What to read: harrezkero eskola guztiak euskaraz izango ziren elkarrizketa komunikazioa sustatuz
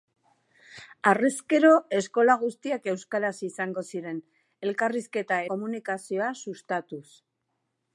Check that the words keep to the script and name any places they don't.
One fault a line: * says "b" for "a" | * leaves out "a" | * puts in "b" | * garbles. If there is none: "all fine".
all fine